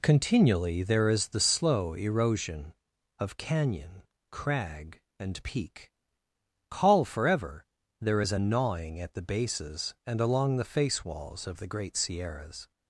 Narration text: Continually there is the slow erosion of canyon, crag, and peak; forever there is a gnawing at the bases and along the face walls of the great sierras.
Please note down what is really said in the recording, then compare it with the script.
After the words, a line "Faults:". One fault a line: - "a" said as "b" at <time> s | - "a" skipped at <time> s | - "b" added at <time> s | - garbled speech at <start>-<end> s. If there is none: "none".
Continually there is the slow erosion of canyon, crag, and peak; call forever there is a gnawing at the bases and along the face walls of the great sierras.
Faults:
- "call" added at 6.7 s